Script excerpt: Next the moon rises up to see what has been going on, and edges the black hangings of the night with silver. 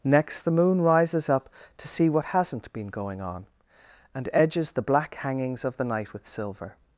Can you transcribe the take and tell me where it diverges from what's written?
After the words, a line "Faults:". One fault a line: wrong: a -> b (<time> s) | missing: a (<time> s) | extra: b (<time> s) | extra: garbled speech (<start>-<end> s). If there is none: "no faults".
Next the moon rises up to see what hasn't been going on, and edges the black hangings of the night with silver.
Faults:
wrong: has -> hasn't (2.2 s)